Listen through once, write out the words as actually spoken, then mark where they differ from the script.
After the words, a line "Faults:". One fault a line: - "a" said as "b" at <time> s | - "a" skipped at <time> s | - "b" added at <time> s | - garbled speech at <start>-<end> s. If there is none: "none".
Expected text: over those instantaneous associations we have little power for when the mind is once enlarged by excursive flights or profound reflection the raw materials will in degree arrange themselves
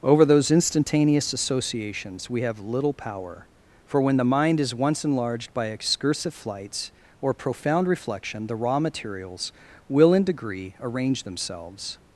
over those instantaneous associations we have little power for when the mind is once enlarged by excursive flights or profound reflection the raw materials will in degree arrange themselves
Faults:
none